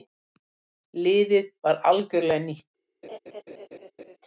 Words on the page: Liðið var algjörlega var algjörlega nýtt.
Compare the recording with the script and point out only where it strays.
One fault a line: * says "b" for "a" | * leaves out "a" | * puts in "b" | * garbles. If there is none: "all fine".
* leaves out "var algjörlega"